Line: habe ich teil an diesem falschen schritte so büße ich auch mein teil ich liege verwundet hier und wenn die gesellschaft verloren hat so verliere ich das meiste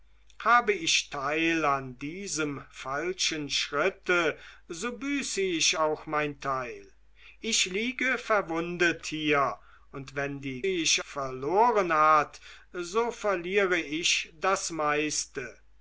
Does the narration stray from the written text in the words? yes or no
yes